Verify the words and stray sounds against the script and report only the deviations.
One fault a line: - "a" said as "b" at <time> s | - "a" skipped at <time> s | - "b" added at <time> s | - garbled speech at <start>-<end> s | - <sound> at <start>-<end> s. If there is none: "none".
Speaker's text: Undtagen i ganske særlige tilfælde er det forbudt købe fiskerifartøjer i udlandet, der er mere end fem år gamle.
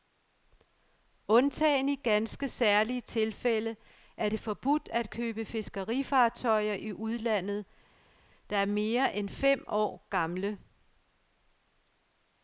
- "at" added at 4.9 s